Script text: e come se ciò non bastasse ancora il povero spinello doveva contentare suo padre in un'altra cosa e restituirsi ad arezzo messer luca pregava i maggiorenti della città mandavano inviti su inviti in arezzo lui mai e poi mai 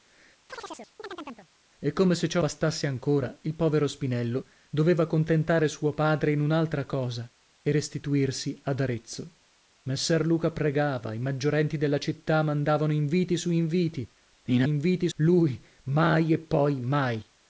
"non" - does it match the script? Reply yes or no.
no